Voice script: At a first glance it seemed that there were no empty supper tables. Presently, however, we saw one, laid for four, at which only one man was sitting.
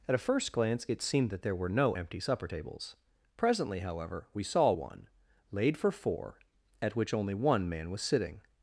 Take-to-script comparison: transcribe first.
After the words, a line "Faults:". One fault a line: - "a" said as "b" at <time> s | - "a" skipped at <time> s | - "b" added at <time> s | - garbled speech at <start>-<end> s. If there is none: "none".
At a first glance it seemed that there were no empty supper tables. Presently, however, we saw one, laid for four, at which only one man was sitting.
Faults:
none